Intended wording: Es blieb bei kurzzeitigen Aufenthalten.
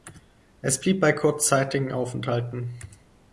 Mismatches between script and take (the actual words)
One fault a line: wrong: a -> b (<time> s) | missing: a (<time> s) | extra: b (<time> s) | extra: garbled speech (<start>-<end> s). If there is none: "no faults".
no faults